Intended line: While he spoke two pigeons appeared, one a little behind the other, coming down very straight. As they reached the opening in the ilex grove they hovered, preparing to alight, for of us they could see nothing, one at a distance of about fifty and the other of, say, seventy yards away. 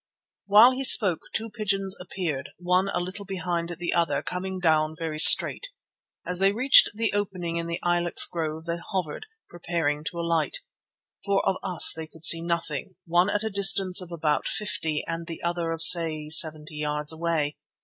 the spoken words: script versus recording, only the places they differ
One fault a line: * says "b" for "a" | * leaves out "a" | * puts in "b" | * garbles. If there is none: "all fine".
all fine